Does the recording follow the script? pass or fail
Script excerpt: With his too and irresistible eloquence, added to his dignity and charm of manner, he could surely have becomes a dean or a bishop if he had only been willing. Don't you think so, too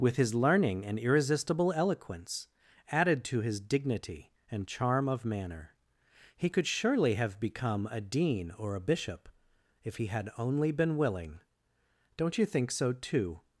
fail